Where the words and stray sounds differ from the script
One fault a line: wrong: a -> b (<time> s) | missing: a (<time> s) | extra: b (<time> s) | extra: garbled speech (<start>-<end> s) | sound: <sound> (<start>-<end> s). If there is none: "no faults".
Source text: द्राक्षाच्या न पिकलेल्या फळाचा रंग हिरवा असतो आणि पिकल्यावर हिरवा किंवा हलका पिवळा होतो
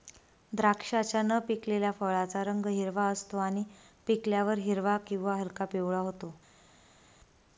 no faults